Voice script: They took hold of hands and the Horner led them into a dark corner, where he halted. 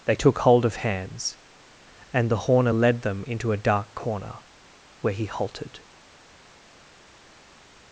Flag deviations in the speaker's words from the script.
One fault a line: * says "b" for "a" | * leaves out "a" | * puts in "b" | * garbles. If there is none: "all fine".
all fine